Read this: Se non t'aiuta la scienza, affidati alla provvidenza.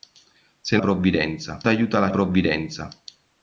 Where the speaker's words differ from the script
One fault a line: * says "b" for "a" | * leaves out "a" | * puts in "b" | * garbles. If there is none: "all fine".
* says "provvidenza" for "non"
* leaves out "scienza affidati alla"